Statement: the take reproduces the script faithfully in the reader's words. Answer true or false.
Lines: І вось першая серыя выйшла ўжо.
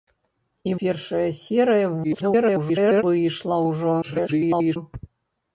false